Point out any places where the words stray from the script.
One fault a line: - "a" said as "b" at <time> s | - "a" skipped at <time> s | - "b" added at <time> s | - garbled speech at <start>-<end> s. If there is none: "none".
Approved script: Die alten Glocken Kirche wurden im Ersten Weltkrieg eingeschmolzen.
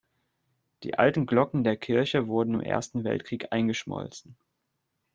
- "der" added at 1.6 s